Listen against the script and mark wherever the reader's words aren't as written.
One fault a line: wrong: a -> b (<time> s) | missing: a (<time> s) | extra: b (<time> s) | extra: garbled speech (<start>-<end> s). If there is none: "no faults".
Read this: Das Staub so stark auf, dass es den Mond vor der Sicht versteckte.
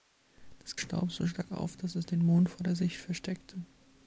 no faults